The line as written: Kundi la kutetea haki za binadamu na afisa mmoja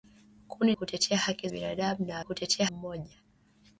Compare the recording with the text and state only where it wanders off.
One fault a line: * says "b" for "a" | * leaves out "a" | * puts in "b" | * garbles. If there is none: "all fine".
* leaves out "la"
* leaves out "za"
* says "kutetea" for "afisa"